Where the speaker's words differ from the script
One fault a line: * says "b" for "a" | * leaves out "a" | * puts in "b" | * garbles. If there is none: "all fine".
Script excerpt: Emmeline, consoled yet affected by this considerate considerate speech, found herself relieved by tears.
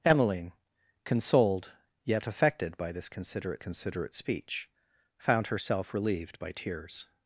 all fine